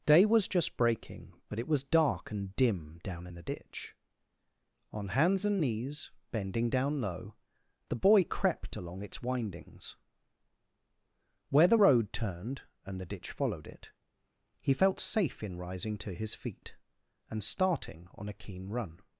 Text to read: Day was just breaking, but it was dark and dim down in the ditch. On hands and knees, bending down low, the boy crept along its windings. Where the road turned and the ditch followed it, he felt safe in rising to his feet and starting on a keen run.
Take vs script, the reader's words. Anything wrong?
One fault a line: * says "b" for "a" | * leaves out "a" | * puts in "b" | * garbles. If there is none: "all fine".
all fine